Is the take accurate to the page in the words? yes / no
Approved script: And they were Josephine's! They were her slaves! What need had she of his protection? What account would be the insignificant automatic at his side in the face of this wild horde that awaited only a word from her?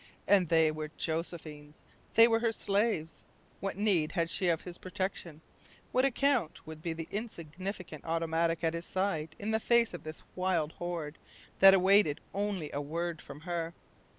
yes